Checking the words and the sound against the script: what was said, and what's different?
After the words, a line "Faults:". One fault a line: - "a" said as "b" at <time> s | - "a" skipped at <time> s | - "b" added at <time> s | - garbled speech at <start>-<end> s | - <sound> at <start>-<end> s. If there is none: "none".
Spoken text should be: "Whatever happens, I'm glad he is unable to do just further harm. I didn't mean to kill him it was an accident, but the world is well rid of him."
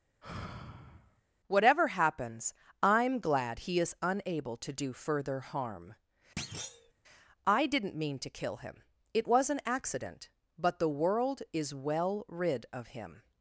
"Whatever happens, I'm glad he is unable to do further harm. I didn't mean to kill him it was an accident, but the world is well rid of him."
Faults:
- sigh at 0.2-1.2 s
- "just" skipped at 4.9 s
- thud at 6.4-6.9 s